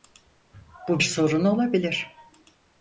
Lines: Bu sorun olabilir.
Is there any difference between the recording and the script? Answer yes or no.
no